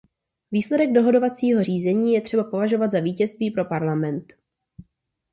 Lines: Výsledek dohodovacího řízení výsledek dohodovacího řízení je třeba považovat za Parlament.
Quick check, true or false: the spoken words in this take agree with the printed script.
false